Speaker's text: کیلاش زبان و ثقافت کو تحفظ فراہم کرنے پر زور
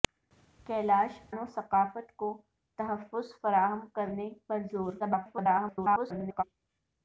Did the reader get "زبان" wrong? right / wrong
wrong